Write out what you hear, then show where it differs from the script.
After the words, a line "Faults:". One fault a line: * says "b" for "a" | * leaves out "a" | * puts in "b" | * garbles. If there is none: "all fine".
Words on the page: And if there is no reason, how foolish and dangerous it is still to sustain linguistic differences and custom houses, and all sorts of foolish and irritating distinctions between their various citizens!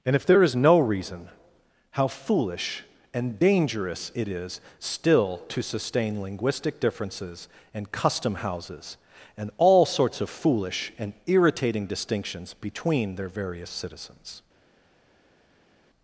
And if there is no reason, how foolish and dangerous it is still to sustain linguistic differences and custom houses, and all sorts of foolish and irritating distinctions between their various citizens!
Faults:
all fine